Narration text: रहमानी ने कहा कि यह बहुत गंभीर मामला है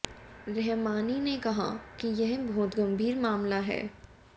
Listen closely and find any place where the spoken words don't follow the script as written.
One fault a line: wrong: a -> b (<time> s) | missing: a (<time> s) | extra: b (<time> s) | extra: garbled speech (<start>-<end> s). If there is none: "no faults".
no faults